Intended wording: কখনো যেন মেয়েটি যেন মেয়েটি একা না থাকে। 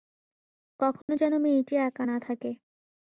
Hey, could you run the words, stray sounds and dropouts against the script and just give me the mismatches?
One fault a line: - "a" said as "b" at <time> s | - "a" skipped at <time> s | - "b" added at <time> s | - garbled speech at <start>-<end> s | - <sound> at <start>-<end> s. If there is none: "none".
- dropout at 1.0-1.1 s
- "যেন মেয়েটি" skipped at 1.7 s